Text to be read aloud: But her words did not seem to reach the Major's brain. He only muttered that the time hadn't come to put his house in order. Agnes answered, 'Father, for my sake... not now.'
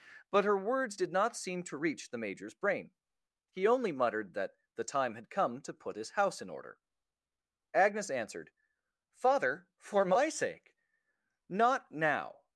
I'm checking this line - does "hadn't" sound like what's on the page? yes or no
no